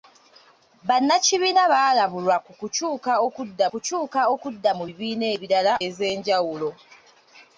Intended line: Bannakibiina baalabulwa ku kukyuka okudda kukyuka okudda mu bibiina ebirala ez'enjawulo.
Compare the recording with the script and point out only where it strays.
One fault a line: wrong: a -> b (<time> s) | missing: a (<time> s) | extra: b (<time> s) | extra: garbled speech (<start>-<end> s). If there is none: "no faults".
no faults